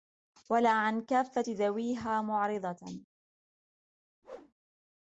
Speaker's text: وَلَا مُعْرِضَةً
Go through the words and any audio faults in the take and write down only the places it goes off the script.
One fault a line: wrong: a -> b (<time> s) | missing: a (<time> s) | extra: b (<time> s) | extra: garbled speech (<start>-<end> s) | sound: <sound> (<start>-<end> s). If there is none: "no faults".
extra: عَنْ كَافَّةِ ذَوِيهَا (0.7 s)
sound: whoosh (4.2-4.5 s)